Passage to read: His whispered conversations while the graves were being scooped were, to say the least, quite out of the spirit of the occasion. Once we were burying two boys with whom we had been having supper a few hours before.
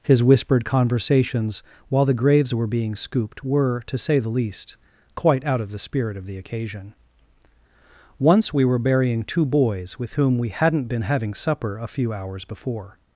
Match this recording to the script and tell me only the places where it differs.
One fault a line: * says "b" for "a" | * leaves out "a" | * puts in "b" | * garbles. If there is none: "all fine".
* says "hadn't" for "had"